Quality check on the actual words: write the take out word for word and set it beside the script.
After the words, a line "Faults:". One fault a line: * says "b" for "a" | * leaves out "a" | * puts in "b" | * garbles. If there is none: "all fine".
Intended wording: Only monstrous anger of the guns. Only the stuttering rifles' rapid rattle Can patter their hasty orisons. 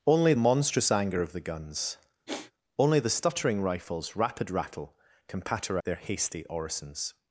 Only monstrous anger of the guns. Only the stuttering rifles' rapid rattle Can patter their hasty orisons.
Faults:
all fine